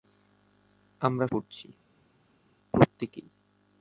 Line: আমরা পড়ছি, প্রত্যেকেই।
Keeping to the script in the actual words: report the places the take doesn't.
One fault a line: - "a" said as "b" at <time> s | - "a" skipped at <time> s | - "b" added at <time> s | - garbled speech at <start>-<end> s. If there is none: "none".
none